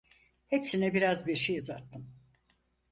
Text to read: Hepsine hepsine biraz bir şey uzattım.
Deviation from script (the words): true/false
true